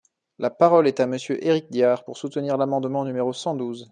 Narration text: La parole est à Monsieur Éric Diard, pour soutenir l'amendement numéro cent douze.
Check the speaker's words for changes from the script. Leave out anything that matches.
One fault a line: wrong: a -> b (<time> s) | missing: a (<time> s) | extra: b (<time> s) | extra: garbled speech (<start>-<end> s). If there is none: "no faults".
no faults